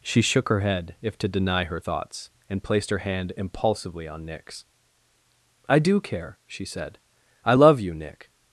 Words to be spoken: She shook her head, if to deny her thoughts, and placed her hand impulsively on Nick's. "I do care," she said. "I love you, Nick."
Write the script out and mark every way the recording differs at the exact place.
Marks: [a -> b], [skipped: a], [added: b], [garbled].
She shook her head, if to deny her thoughts, and placed her hand impulsively on Nick's. "I do care," she said. "I love you, Nick."